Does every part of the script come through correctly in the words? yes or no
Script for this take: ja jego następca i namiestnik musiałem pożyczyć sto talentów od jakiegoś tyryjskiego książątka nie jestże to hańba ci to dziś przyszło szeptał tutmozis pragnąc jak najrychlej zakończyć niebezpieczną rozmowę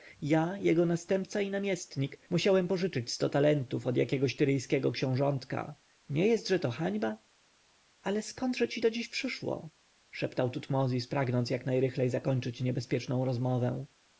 no